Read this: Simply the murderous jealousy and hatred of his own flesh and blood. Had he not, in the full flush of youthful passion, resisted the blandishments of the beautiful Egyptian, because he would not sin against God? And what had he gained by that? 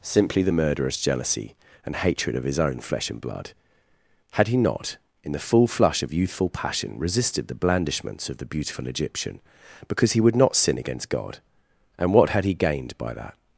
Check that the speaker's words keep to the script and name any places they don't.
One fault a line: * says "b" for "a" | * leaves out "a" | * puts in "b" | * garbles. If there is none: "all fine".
all fine